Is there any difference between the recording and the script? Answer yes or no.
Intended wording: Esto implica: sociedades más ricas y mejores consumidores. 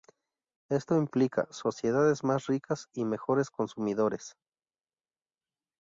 no